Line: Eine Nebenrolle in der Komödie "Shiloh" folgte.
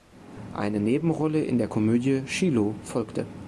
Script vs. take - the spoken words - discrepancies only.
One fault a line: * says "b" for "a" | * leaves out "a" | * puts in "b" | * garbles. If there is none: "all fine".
all fine